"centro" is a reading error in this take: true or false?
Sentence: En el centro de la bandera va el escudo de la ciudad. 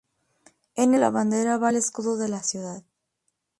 true